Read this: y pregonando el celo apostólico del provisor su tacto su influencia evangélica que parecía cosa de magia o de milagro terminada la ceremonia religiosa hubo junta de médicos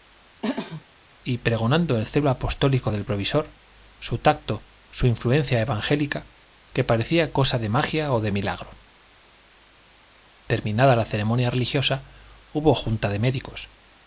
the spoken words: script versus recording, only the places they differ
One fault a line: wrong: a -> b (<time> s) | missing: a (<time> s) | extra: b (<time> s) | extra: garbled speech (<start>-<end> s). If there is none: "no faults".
no faults